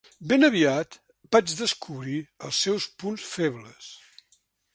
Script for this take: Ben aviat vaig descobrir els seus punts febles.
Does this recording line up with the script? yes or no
yes